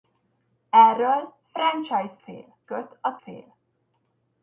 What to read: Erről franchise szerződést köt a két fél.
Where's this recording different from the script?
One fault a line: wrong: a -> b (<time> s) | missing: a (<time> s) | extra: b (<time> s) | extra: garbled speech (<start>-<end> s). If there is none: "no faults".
wrong: szerződést -> fél (2.2 s)
missing: két (3.2 s)